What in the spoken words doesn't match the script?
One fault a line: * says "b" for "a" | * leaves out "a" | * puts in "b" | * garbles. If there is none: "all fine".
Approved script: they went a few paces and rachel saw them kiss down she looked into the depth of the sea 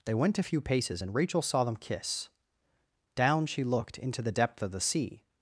all fine